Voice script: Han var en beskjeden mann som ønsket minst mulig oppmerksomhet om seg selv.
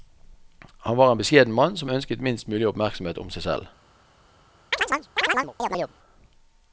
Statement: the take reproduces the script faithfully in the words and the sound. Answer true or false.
false